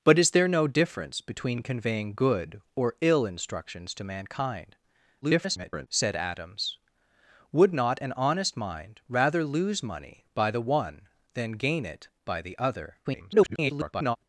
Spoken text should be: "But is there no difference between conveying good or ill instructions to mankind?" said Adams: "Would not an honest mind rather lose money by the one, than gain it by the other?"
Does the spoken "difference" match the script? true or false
true